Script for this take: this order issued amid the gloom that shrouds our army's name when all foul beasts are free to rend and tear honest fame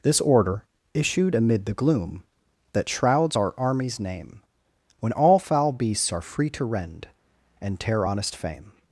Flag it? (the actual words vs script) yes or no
no